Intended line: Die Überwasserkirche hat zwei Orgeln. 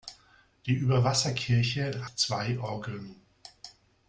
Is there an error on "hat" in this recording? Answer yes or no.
yes